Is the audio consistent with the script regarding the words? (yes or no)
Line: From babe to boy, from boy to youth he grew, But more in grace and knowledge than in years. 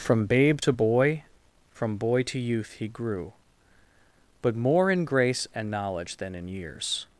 yes